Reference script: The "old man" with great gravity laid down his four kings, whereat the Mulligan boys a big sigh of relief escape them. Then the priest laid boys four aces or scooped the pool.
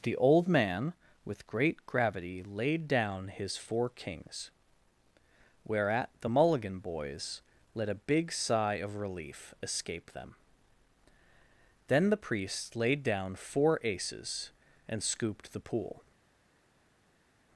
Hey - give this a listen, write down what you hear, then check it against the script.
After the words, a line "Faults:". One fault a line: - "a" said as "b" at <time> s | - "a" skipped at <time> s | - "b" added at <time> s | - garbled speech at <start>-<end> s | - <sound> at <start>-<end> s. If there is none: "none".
The "old man" with great gravity laid down his four kings, whereat the Mulligan boys let a big sigh of relief escape them. Then the priest laid down four aces and scooped the pool.
Faults:
- "let" added at 7.7 s
- "boys" said as "down" at 13.0 s
- "or" said as "and" at 14.9 s